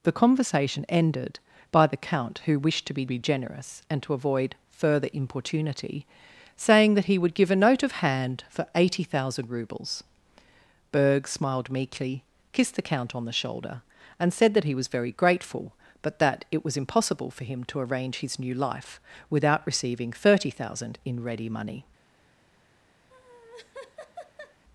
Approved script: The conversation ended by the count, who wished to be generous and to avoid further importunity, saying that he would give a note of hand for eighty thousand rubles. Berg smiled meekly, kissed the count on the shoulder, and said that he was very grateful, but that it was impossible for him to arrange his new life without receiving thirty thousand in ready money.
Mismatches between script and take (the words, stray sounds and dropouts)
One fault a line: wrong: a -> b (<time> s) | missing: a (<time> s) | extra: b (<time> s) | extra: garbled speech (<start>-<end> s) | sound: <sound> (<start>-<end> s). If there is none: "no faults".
extra: be (3.1 s)
sound: laugh (23.1-24.6 s)